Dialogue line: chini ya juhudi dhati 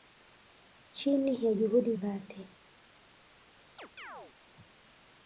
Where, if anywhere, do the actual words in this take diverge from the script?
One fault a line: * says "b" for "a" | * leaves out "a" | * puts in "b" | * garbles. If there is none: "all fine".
all fine